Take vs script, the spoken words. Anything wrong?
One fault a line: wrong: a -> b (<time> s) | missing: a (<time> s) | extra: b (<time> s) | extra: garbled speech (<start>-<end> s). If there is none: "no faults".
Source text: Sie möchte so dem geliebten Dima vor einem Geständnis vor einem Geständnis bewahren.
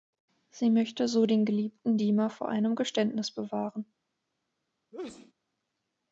wrong: dem -> den (1.3 s)
missing: vor einem Geständnis (3.3 s)